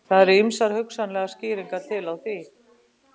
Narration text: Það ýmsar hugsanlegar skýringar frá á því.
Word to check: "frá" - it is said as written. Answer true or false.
false